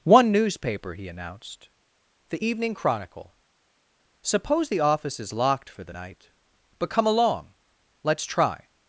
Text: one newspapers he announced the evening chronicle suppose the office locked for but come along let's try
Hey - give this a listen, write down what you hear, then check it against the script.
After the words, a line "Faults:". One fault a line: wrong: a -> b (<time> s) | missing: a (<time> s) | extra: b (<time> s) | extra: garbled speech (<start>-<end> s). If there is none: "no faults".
one newspaper he announced the evening chronicle suppose the office is locked for the night but come along let's try
Faults:
wrong: newspapers -> newspaper (0.3 s)
extra: is (5.2 s)
extra: the night (5.8 s)